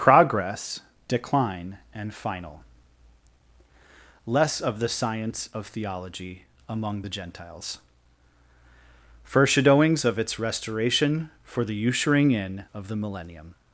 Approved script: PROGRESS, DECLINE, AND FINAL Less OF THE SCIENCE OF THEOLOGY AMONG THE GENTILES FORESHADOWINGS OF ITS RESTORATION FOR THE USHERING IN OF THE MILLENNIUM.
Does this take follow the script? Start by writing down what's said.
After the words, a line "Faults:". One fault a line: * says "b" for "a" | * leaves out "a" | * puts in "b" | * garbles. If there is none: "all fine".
PROGRESS, DECLINE, AND FINAL Less OF THE SCIENCE OF THEOLOGY AMONG THE GENTILES FORESHADOWINGS OF ITS RESTORATION FOR THE USHERING IN OF THE MILLENNIUM.
Faults:
all fine